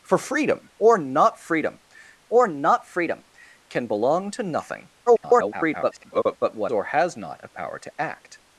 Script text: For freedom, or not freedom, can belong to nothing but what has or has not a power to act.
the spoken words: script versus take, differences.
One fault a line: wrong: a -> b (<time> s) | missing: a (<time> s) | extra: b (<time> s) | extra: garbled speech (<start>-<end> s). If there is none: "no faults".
extra: or not freedom (2.3 s)
extra: garbled speech (5.1-6.4 s)
missing: has (6.7 s)